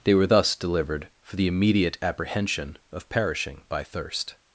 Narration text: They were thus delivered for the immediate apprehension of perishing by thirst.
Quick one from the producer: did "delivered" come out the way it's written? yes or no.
yes